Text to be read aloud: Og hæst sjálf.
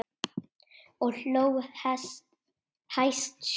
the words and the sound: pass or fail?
fail